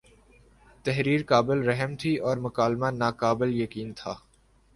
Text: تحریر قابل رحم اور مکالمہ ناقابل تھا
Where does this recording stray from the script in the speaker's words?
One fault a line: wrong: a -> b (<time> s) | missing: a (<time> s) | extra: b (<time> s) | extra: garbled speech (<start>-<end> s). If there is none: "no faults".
extra: تھی (2.0 s)
extra: یقین (3.5 s)